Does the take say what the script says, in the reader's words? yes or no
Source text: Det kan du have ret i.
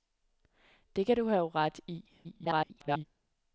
no